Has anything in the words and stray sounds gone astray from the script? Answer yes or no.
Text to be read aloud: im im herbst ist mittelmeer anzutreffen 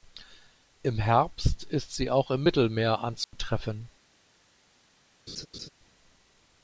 yes